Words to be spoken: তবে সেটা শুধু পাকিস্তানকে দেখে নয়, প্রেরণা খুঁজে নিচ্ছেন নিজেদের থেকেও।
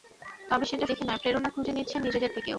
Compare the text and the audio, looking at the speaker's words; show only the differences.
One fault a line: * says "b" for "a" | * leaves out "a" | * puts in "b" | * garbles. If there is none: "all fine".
* leaves out "শুধু পাকিস্তানকে"